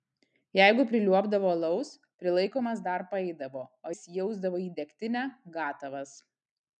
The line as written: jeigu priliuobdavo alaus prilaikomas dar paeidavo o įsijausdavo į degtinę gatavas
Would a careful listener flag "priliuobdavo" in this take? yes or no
no